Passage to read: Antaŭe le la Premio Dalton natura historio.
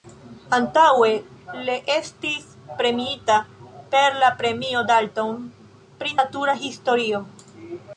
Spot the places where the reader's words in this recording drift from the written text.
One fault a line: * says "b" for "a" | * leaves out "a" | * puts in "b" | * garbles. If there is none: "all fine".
* puts in "estis premiita per"
* puts in "pri"